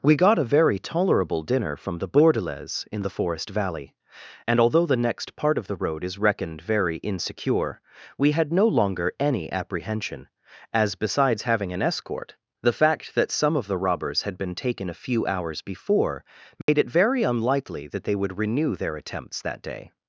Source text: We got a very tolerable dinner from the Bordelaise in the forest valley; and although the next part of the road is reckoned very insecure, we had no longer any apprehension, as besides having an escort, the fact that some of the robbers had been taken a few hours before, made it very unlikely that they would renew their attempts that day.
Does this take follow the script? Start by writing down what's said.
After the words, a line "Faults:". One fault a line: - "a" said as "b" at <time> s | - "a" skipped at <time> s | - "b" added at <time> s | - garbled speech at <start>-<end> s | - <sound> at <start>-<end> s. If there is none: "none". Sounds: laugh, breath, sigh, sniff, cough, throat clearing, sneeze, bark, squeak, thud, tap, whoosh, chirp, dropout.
We got a very tolerable dinner from the Bordelaise in the forest valley; and although the next part of the road is reckoned very insecure, we had no longer any apprehension, as besides having an escort, the fact that some of the robbers had been taken a few hours before, made it very unlikely that they would renew their attempts that day.
Faults:
- dropout at 16.6-16.7 s